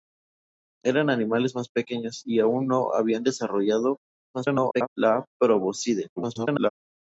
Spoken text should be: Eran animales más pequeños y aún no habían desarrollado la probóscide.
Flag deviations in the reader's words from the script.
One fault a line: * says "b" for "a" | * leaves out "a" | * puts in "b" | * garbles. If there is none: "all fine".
* garbles
* garbles